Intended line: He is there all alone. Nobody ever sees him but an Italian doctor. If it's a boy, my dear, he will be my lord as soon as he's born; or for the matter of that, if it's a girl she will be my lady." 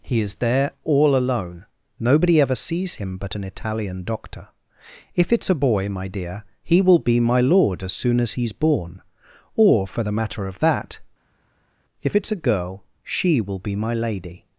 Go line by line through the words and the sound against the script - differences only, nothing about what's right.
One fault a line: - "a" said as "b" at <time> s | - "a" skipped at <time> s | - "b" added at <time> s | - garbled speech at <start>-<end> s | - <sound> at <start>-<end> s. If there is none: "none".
none